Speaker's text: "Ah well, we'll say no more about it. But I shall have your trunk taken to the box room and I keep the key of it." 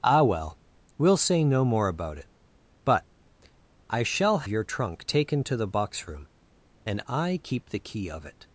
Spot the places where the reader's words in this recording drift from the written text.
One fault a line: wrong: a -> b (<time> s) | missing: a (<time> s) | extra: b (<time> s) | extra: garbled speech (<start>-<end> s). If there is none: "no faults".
missing: have (4.5 s)